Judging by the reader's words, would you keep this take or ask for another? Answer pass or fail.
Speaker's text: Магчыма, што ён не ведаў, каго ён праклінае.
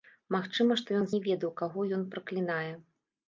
pass